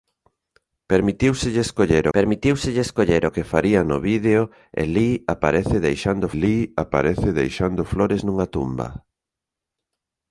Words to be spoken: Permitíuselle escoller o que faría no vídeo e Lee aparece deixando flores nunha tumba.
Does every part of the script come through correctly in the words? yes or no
no